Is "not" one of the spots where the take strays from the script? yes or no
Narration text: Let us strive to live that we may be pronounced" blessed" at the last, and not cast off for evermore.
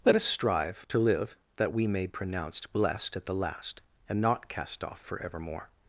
no